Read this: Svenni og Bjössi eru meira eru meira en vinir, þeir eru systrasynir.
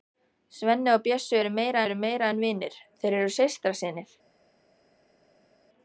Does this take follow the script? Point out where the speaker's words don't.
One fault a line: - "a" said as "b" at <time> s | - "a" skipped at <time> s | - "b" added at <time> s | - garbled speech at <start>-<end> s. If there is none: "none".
none